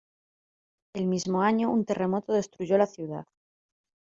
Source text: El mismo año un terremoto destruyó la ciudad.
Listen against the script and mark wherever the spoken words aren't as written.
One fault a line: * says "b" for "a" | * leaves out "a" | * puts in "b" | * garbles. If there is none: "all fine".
all fine